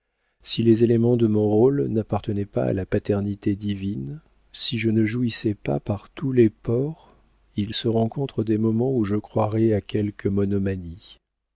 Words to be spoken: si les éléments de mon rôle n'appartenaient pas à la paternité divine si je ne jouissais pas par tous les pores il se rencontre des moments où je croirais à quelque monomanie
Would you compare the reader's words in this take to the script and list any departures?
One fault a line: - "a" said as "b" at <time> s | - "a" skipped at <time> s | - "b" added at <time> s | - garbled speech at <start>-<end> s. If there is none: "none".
none